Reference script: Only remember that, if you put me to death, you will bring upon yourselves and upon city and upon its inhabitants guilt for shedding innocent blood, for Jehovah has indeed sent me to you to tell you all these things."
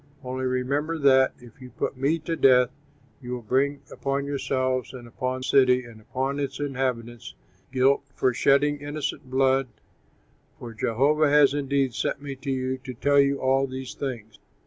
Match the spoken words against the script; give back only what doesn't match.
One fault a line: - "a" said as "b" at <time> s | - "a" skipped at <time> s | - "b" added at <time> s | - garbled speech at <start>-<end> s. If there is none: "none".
none